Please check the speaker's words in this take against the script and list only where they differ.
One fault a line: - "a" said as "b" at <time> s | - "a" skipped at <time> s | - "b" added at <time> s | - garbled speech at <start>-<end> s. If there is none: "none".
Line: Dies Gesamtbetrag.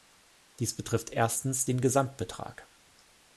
- "betrifft erstens den" added at 0.8 s